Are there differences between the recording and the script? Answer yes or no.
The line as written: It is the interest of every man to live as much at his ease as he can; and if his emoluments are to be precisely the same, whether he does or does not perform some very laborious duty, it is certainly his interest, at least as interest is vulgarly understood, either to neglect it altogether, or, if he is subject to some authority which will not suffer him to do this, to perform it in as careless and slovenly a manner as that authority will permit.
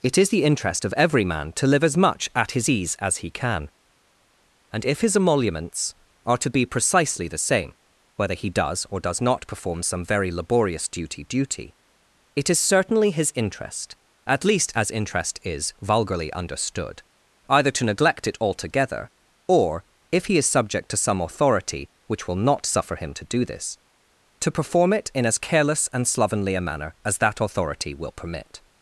yes